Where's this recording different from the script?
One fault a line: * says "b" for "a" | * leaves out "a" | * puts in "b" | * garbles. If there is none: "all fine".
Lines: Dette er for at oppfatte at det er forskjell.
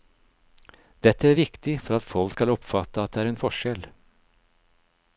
* puts in "viktig"
* puts in "folk skal"
* puts in "en"